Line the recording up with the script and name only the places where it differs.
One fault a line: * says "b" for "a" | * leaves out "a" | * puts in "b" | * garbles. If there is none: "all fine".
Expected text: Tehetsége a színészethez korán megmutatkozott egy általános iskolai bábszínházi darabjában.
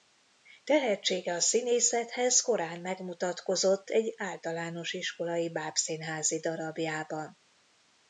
all fine